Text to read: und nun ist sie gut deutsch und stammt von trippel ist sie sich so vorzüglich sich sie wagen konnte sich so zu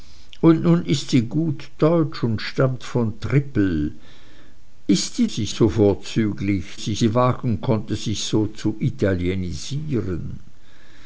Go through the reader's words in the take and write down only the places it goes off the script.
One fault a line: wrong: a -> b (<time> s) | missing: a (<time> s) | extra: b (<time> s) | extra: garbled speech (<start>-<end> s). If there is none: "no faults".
no faults